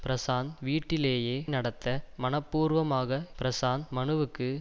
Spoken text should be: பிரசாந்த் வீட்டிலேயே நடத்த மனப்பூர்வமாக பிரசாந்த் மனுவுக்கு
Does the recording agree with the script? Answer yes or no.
yes